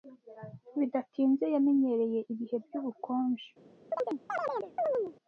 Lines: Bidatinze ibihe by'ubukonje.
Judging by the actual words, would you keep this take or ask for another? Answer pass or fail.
fail